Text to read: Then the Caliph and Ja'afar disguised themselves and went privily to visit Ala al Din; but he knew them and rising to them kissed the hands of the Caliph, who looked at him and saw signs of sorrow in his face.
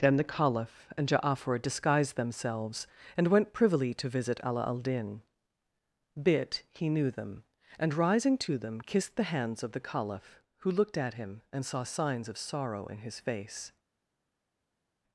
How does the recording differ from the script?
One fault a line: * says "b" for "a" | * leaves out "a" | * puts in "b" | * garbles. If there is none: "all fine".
* says "bit" for "but"